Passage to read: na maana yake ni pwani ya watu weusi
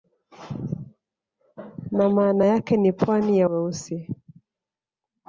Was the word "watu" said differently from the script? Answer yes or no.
yes